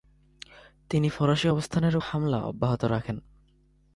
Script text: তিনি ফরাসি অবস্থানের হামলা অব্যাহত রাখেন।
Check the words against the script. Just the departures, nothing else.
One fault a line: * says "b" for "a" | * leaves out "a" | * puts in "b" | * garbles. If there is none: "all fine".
all fine